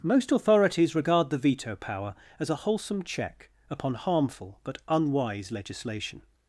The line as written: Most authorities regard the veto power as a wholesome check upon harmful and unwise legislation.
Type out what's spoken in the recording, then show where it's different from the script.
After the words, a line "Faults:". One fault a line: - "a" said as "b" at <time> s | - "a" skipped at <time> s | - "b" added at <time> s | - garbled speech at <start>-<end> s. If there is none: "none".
Most authorities regard the veto power as a wholesome check upon harmful but unwise legislation.
Faults:
- "and" said as "but" at 4.6 s